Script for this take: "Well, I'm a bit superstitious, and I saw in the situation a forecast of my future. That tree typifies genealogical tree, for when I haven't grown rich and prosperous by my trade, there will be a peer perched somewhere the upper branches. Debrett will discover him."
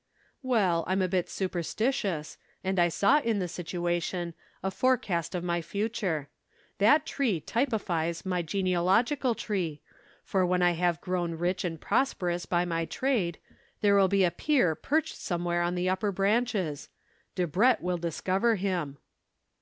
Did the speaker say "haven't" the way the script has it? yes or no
no